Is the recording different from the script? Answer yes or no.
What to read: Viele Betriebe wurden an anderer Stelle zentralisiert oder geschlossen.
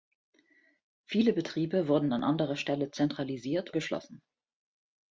yes